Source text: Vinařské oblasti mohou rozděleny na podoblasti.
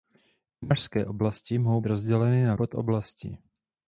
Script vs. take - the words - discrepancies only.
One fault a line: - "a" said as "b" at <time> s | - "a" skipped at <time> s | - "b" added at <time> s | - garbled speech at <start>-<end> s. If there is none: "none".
none